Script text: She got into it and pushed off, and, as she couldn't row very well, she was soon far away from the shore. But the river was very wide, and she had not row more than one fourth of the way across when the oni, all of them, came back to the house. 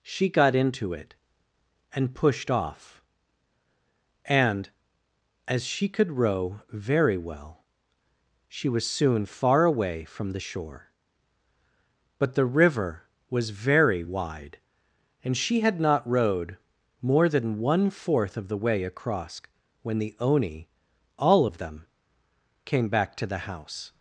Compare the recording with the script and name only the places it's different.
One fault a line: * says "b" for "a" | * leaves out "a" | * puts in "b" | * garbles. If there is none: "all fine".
* says "could" for "couldn't"
* says "rowed" for "row"